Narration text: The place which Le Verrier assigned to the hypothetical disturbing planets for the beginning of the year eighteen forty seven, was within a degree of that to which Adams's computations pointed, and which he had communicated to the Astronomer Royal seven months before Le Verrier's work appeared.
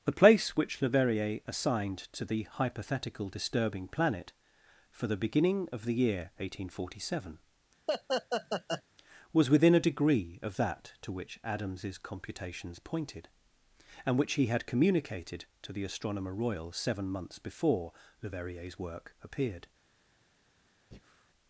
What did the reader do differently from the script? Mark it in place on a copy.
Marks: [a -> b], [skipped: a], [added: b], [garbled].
The place which Le Verrier assigned to the hypothetical disturbing [planets -> planet] for the beginning of the year eighteen forty seven, was within a degree of that to which Adams's computations pointed, and which he had communicated to the Astronomer Royal seven months before Le Verrier's work appeared.